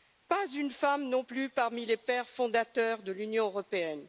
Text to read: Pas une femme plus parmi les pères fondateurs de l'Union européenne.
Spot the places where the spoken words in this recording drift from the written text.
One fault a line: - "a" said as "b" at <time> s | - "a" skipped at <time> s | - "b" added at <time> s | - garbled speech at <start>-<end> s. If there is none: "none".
- "non" added at 1.1 s